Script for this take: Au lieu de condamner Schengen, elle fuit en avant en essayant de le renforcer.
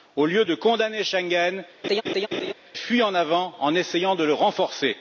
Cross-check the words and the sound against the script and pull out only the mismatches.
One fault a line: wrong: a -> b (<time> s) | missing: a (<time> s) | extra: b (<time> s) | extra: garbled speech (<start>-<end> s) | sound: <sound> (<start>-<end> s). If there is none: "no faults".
missing: elle (1.6 s)
sound: laugh (1.8-2.5 s)